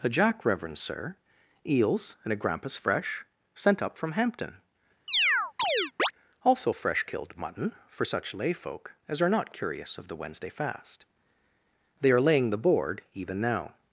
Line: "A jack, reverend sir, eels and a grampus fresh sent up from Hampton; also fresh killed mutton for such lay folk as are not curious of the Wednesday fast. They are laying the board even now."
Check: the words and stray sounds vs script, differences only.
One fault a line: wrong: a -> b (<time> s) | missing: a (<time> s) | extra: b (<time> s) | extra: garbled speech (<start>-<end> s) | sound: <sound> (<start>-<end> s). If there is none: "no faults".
sound: chirp (5.1-6.1 s)